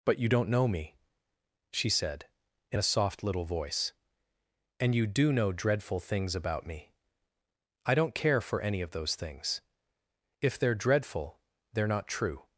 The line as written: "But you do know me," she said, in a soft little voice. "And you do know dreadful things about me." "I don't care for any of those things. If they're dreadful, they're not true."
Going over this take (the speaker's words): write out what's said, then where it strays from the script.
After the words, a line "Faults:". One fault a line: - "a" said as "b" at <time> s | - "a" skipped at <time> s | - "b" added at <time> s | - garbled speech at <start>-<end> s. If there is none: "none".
"But you don't know me," she said, in a soft little voice. "And you do know dreadful things about me." "I don't care for any of those things. If they're dreadful, they're not true."
Faults:
- "do" said as "don't" at 0.3 s